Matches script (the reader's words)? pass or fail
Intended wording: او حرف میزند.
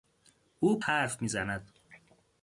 pass